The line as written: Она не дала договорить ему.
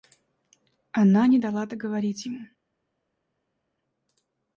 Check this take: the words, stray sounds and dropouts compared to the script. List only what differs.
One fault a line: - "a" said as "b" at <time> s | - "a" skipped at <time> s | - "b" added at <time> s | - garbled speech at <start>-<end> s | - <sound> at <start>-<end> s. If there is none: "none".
none